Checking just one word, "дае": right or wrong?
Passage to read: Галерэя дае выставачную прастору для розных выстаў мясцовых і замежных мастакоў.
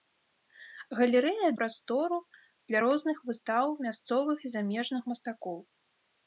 wrong